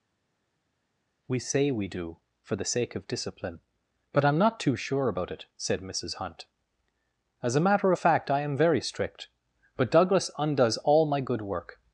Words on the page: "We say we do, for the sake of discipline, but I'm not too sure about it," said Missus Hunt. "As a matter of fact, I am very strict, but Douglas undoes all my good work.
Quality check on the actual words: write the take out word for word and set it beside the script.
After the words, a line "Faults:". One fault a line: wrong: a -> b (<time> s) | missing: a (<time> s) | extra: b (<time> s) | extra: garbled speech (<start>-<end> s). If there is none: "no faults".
"We say we do, for the sake of discipline, but I'm not too sure about it," said Missus Hunt. "As a matter of fact, I am very strict, but Douglas undoes all my good work.
Faults:
no faults